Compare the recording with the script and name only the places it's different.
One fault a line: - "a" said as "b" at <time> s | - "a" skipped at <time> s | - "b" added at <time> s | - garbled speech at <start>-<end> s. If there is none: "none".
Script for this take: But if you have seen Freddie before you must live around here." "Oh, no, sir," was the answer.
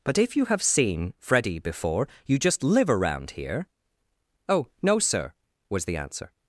- "must" said as "just" at 2.4 s